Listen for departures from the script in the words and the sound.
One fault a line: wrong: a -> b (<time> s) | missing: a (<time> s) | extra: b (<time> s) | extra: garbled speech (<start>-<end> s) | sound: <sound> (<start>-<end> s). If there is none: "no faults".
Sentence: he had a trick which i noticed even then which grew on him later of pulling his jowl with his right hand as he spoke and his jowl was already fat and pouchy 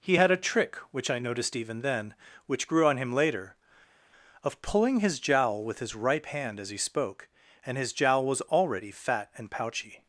wrong: right -> ripe (5.9 s)